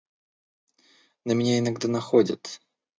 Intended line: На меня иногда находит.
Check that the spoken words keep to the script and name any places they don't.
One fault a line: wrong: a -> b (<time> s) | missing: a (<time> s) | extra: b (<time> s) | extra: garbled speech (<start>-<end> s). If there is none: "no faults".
no faults